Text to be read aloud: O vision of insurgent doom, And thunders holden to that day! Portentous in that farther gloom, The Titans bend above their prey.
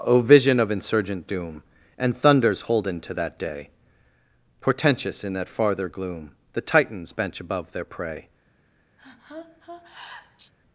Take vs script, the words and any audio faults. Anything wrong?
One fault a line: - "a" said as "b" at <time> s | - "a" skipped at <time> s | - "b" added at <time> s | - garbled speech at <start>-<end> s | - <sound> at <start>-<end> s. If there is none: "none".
- "bend" said as "bench" at 7.1 s
- sneeze at 9.0-10.5 s